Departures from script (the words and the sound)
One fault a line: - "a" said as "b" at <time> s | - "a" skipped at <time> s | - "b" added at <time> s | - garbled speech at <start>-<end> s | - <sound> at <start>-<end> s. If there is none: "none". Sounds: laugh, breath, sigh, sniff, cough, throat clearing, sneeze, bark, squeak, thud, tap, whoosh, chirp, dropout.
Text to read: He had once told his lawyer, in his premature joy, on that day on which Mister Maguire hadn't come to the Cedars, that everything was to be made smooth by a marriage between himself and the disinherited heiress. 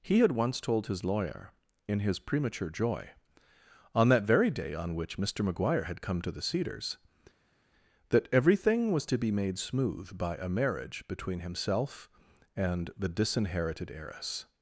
- "very" added at 4.2 s
- "hadn't" said as "had" at 5.8 s